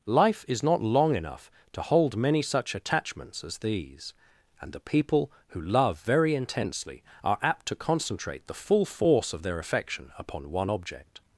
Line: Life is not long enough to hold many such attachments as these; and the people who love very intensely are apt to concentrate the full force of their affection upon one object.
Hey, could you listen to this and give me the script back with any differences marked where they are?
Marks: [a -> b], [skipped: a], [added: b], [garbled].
Life is not long enough to hold many such attachments as these; and the people who love very intensely are apt to concentrate the full force of their affection upon one object.